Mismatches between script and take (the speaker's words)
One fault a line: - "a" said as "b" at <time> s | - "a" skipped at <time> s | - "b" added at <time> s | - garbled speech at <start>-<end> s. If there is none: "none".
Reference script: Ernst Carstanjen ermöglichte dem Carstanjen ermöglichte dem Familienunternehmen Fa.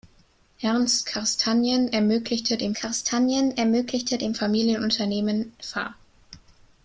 none